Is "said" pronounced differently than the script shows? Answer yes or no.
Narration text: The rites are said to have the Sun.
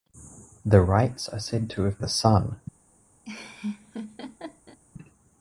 no